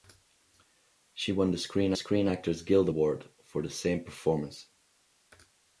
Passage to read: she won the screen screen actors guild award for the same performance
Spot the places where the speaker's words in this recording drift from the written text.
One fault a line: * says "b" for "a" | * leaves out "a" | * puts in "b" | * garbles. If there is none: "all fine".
all fine